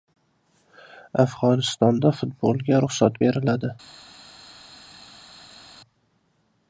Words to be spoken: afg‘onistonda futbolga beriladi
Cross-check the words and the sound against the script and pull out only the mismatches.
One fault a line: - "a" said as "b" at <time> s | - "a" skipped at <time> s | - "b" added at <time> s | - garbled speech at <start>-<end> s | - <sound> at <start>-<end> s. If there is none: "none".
- "ruxsat" added at 2.8 s